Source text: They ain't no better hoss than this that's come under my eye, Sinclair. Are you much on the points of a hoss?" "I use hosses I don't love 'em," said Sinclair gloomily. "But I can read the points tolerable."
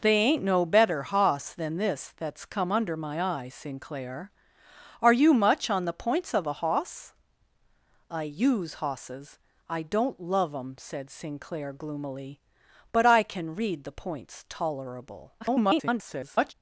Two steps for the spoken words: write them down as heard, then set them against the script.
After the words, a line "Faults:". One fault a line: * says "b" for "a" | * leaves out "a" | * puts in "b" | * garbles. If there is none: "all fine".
They ain't no better hoss than this that's come under my eye, Sinclair. Are you much on the points of a hoss?" "I use hosses I don't love 'em," said Sinclair gloomily. "But I can read the points tolerable." [garbled]
Faults:
* garbles